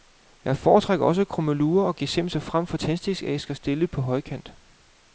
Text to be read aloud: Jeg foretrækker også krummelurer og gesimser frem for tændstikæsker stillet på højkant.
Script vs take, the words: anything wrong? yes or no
no